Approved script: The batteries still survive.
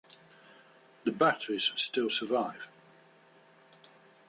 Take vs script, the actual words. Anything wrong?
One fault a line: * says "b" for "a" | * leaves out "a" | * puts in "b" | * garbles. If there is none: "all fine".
all fine